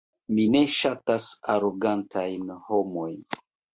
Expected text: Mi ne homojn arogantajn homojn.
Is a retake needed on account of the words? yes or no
yes